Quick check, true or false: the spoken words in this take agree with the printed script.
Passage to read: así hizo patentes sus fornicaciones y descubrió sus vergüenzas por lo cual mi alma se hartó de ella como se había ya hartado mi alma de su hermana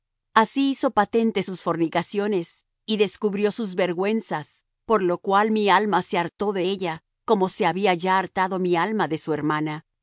true